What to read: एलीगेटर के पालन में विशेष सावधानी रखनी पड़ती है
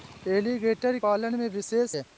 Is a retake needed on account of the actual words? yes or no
yes